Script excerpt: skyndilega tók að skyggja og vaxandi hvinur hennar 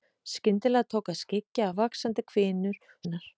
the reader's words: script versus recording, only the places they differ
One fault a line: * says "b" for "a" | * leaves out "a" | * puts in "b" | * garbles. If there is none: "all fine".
all fine